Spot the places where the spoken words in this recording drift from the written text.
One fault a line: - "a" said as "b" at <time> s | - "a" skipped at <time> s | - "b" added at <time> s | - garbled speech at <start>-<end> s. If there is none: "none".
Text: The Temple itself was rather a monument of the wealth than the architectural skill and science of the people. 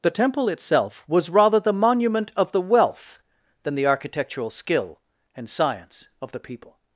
- "a" said as "the" at 1.6 s